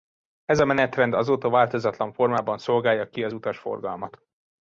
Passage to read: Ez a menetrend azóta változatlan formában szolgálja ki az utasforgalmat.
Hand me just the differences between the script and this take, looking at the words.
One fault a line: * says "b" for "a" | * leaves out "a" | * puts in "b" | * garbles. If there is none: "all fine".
all fine